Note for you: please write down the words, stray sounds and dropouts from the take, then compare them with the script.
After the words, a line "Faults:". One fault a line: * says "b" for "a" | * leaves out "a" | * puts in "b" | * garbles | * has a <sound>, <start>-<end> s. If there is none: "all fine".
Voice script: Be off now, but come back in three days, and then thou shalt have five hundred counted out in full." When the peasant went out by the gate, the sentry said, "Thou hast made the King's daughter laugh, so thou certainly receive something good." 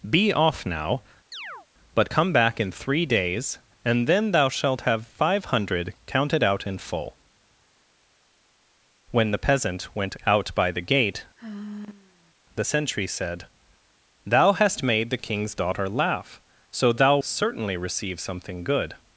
Be off now, but come back in three days, and then thou shalt have five hundred counted out in full." When the peasant went out by the gate, the sentry said, "Thou hast made the King's daughter laugh, so thou certainly receive something good."
Faults:
* has a chirp, 1.3-1.7 s
* has a sigh, 11.4-12.3 s